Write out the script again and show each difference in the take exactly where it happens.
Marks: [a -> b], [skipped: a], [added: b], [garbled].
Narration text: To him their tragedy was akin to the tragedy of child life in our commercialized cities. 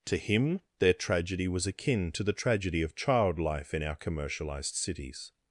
To him their tragedy was akin to the tragedy of child life in our commercialized cities.